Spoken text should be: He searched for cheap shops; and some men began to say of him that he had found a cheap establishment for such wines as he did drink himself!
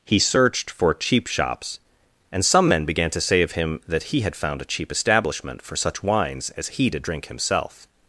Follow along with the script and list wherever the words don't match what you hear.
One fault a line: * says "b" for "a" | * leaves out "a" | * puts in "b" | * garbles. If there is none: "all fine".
all fine